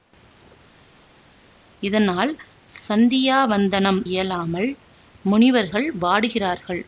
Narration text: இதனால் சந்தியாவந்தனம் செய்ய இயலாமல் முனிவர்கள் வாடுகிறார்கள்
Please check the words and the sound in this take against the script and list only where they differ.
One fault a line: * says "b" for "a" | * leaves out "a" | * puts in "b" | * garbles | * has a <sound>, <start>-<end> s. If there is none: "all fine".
* leaves out "செய்ய"